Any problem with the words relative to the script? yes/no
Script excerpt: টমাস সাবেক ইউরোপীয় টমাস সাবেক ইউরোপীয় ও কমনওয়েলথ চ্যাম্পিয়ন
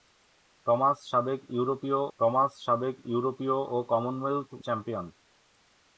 no